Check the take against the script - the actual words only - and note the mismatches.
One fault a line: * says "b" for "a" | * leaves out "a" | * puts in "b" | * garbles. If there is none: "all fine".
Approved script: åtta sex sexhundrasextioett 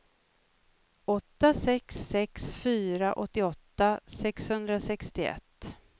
* puts in "sex fyra åttioåtta"